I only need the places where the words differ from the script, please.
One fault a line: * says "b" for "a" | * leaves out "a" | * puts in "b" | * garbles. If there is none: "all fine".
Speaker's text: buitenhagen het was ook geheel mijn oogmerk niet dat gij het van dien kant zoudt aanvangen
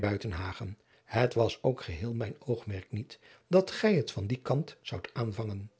all fine